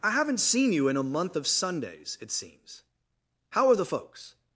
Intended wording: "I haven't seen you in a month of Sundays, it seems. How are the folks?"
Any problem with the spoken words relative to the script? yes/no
no